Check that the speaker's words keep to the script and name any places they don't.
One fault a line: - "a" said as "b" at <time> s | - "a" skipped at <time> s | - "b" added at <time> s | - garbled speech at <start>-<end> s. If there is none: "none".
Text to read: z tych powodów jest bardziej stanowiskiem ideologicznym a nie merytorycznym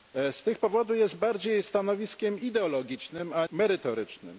- "nie" skipped at 3.5 s